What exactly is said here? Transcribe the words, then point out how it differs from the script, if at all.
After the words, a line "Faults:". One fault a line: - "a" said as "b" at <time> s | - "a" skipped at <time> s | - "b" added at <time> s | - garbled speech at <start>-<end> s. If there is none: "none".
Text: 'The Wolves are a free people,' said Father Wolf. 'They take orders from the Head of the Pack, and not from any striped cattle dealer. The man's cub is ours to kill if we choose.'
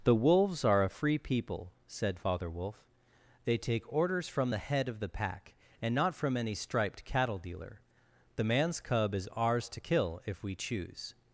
'The Wolves are a free people,' said Father Wolf. 'They take orders from the Head of the Pack, and not from any striped cattle dealer. The man's cub is ours to kill if we choose.'
Faults:
none